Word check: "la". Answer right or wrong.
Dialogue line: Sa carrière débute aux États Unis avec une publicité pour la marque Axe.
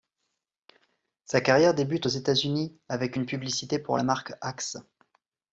right